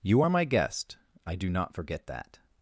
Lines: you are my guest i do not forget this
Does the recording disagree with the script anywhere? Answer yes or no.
yes